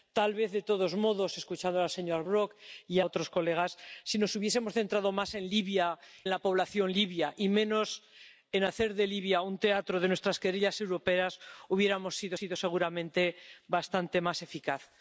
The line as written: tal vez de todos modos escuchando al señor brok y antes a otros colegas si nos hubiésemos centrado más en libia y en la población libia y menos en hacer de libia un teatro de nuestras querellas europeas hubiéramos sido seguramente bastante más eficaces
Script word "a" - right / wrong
wrong